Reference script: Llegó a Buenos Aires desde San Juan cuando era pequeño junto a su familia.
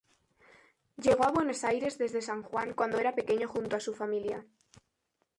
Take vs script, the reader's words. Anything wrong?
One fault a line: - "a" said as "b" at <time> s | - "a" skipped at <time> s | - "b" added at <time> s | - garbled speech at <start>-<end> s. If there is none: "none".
none